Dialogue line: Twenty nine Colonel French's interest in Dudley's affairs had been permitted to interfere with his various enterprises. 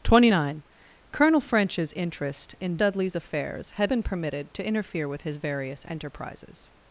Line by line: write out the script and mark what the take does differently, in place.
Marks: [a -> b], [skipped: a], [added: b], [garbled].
Twenty nine Colonel French's interest in Dudley's affairs had been permitted to interfere with his various enterprises.